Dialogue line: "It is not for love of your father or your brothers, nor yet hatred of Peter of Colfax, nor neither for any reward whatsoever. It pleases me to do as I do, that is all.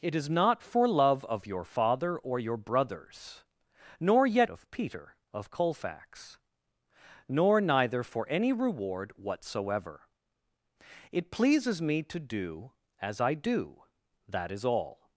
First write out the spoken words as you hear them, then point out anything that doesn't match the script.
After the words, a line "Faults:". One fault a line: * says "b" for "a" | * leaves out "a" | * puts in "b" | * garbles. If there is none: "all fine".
"It is not for love of your father or your brothers, nor yet of Peter of Colfax, nor neither for any reward whatsoever. It pleases me to do as I do, that is all.
Faults:
* leaves out "hatred"